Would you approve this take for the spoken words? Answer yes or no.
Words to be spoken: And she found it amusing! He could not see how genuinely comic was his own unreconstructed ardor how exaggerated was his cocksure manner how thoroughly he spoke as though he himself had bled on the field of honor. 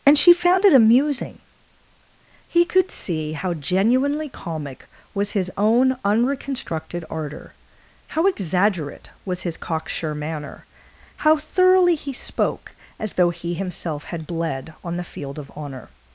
no